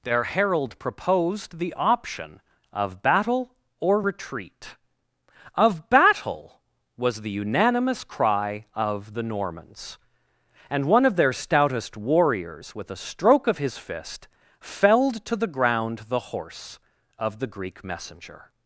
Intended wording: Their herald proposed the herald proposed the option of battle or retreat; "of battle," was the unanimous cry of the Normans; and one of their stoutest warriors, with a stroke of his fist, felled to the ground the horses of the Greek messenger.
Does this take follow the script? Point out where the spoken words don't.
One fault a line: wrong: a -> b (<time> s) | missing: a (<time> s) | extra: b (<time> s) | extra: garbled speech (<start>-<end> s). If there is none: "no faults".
missing: herald proposed the (1.7 s)
wrong: horses -> horse (16.2 s)